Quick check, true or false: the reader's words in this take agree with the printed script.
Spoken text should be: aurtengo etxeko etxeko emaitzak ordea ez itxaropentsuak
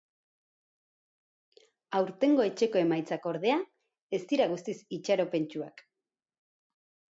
false